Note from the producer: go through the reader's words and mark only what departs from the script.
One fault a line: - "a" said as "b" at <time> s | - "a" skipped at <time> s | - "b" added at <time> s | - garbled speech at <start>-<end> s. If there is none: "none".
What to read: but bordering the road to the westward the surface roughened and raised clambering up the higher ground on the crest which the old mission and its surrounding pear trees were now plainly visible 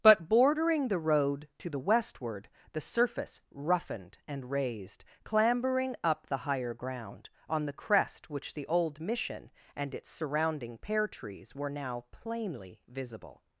none